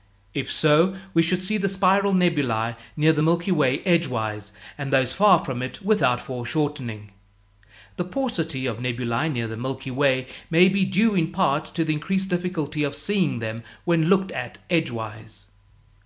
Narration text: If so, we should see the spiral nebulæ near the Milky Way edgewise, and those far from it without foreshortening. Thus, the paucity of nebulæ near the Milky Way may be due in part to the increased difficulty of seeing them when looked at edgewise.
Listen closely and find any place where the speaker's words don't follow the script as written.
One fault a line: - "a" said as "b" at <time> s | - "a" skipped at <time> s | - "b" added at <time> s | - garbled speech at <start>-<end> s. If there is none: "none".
- "Thus" skipped at 7.1 s